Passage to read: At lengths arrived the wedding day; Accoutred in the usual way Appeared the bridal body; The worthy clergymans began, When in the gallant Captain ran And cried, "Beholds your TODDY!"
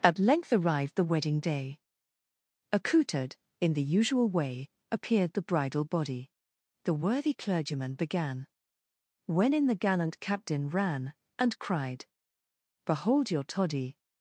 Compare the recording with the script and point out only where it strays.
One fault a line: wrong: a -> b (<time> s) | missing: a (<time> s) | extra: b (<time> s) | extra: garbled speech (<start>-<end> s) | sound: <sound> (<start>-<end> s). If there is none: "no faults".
wrong: lengths -> length (0.2 s)
wrong: clergymans -> clergyman (7.3 s)
wrong: Beholds -> Behold (12.8 s)